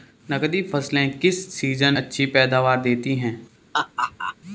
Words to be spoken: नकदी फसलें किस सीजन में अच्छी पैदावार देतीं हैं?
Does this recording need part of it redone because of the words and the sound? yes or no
yes